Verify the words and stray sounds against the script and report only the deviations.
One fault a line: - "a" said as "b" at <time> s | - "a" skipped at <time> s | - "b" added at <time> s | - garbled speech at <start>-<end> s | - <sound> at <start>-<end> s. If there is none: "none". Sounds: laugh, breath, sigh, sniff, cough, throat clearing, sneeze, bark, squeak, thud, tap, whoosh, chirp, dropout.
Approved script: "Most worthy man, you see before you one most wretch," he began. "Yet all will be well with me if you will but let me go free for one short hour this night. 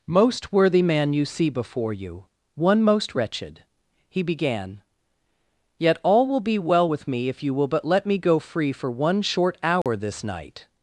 - "wretch" said as "wretched" at 3.1 s
- dropout at 9.8-9.9 s